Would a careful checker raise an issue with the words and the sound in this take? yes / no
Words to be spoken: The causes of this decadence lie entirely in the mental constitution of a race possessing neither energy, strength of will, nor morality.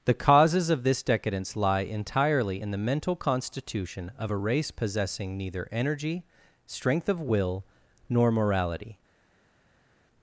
no